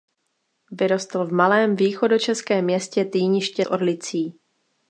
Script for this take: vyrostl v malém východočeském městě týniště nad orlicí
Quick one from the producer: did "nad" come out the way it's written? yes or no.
no